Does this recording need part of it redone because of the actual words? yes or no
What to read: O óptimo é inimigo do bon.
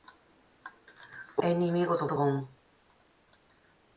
yes